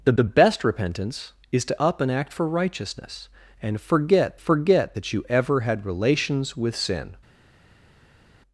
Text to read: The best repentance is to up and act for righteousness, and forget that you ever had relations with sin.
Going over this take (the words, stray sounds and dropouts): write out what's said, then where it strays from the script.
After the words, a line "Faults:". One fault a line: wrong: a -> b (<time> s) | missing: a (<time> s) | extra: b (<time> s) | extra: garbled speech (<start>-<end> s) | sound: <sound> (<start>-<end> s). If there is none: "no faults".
The the best repentance is to up and act for righteousness, and forget forget that you ever had relations with sin.
Faults:
extra: the (0.1 s)
extra: forget (4.4 s)